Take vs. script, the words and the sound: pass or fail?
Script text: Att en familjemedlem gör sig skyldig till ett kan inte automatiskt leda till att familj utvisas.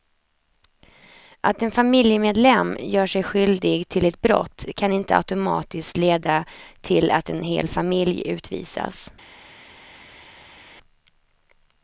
fail